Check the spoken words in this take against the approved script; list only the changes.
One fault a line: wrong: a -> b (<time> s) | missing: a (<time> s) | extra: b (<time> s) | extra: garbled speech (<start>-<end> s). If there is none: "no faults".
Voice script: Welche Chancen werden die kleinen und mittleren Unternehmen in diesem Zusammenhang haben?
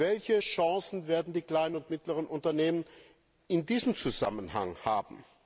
no faults